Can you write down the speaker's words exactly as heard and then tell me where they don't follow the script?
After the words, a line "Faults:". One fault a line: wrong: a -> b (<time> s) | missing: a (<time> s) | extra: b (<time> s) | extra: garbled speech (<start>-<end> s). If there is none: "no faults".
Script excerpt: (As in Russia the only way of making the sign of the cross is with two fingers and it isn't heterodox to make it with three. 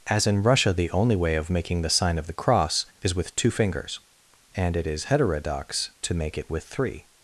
(As in Russia the only way of making the sign of the cross is with two fingers and it is heterodox to make it with three.
Faults:
wrong: isn't -> is (4.9 s)